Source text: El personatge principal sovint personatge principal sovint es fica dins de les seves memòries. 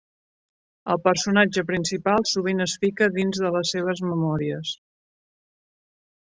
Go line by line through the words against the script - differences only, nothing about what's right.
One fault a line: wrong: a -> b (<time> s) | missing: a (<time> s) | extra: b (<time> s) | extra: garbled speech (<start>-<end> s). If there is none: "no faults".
missing: personatge principal sovint (2.6 s)